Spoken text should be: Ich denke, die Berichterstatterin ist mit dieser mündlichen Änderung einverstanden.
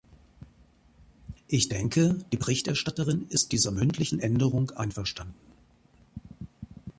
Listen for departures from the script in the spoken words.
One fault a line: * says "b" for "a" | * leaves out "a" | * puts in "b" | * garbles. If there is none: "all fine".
* leaves out "mit"